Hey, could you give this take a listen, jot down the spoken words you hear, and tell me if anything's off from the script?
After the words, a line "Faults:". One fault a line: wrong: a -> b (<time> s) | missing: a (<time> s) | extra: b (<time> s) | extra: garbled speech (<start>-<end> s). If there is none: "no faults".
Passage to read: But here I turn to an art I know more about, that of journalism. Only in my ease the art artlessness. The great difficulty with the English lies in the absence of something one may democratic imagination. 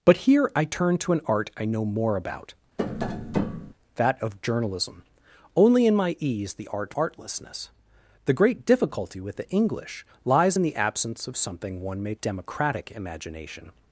But here I turn to an art I know more about, that of journalism. Only in my ease the art artlessness. The great difficulty with the English lies in the absence of something one may democratic imagination.
Faults:
no faults